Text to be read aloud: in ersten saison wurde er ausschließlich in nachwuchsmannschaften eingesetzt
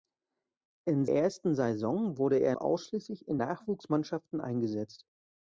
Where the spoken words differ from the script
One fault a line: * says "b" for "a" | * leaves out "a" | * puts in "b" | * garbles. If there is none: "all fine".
all fine